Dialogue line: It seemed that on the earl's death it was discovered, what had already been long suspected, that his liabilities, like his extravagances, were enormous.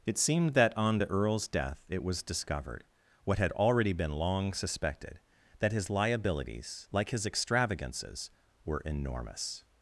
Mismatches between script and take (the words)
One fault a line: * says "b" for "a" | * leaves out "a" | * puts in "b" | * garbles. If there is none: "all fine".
all fine